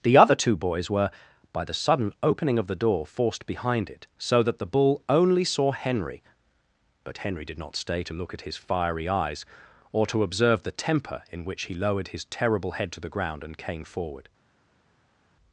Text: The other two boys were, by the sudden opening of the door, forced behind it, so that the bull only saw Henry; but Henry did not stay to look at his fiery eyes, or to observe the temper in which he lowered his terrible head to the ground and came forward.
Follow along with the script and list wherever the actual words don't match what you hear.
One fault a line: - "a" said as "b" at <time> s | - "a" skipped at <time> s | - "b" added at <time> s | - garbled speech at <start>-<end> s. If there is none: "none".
none